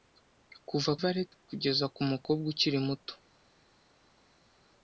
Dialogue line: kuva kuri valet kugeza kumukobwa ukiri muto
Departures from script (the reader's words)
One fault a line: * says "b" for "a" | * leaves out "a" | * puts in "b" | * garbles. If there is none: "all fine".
* leaves out "kuri"